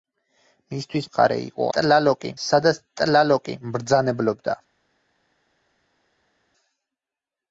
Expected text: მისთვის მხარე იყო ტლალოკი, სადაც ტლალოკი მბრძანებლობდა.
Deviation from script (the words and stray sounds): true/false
false